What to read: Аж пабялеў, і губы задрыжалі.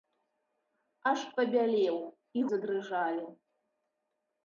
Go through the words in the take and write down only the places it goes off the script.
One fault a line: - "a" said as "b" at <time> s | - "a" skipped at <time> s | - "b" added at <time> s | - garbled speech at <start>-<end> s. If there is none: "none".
- "губы" skipped at 2.5 s